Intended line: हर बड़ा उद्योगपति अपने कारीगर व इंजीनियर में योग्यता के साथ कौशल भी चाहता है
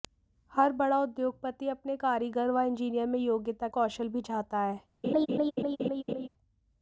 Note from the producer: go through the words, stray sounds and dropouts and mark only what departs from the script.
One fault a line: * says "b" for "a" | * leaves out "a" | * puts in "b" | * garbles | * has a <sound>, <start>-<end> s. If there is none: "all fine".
* leaves out "के साथ"
* has a laugh, 5.0-6.3 s